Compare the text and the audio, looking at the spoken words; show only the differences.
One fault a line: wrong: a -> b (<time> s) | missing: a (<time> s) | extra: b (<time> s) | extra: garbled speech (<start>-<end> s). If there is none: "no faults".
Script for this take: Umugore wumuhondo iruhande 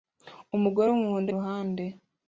no faults